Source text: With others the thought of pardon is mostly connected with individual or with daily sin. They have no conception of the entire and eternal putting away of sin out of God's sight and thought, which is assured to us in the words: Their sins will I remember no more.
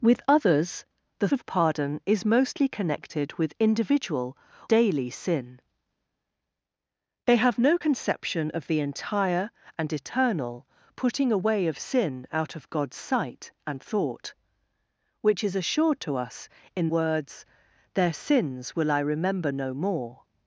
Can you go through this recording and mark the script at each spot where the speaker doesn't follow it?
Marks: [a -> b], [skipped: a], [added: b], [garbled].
With others the [skipped: thought] of pardon is mostly connected with individual [skipped: or with] daily sin. They have no conception of the entire and eternal putting away of sin out of God's sight and thought, which is assured to us in [skipped: the] words: Their sins will I remember no more.